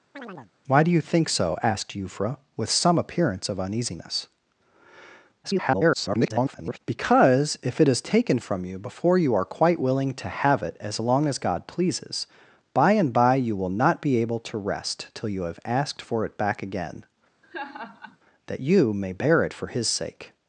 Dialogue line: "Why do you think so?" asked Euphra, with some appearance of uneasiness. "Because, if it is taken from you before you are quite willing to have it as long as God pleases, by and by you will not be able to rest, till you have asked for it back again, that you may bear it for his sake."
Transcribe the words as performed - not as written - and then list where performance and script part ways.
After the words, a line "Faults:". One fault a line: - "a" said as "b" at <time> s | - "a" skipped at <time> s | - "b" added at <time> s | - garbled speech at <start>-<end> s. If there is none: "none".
"Why do you think so?" asked Euphra, with some appearance of uneasiness. [garbled] "Because, if it is taken from you before you are quite willing to have it as long as God pleases, by and by you will not be able to rest, till you have asked for it back again, that you may bear it for his sake."
Faults:
- garbled speech at 5.4-6.8 s